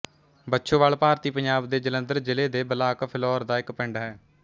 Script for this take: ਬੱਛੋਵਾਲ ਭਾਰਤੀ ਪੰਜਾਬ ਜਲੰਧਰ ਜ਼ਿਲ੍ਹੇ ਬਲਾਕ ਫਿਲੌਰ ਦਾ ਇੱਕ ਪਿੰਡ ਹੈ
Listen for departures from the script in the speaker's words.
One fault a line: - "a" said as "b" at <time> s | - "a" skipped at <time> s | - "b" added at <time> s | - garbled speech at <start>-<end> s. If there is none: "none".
- "ਦੇ" added at 1.7 s
- "ਦੇ" added at 2.5 s